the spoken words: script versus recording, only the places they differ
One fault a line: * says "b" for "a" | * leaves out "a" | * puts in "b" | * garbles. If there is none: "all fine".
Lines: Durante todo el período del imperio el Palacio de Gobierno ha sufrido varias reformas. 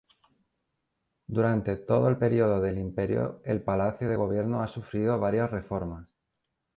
all fine